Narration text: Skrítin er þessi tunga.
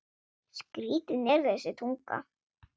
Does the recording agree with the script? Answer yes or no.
yes